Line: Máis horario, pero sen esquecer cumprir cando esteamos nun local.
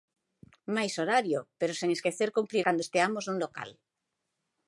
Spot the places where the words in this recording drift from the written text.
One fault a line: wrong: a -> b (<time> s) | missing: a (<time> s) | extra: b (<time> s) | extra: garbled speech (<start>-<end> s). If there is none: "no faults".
no faults